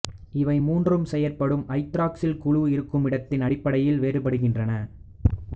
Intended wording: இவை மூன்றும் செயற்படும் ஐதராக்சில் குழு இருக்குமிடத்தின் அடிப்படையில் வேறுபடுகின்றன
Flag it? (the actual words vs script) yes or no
no